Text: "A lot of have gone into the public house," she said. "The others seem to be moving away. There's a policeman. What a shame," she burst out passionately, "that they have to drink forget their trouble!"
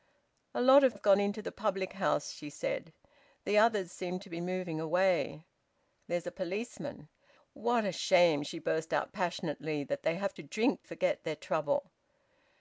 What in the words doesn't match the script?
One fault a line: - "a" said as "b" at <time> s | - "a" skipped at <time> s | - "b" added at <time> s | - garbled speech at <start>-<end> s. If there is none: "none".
none